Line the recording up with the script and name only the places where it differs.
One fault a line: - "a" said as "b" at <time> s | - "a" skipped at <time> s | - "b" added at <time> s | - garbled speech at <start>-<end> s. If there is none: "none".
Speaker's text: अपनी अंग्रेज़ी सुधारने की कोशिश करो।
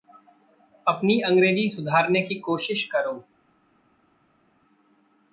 none